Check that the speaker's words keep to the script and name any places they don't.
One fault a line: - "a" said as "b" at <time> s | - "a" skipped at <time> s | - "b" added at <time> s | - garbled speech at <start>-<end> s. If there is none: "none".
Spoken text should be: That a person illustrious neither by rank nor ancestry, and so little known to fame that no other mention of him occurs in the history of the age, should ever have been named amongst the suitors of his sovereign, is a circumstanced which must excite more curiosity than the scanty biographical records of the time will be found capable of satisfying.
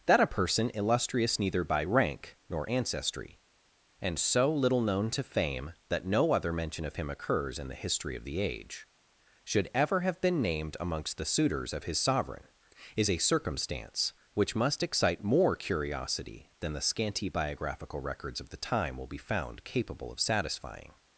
- "circumstanced" said as "circumstance" at 13.2 s